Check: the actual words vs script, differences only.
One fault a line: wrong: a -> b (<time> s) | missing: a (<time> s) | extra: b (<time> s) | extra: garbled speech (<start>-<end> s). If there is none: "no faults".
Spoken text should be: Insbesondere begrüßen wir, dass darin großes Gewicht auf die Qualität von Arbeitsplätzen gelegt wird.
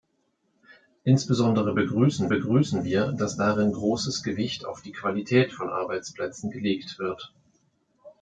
extra: begrüßen (2.3 s)